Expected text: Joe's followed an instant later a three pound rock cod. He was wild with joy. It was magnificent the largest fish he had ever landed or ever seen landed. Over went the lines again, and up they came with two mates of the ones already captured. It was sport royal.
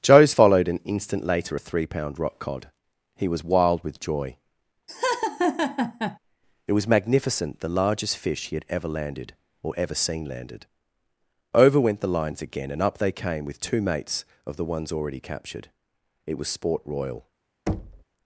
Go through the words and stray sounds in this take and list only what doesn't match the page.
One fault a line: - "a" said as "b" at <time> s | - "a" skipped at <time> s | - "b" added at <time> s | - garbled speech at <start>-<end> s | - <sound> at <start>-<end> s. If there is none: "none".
- laugh at 4.9-6.2 s
- thud at 17.7-18.0 s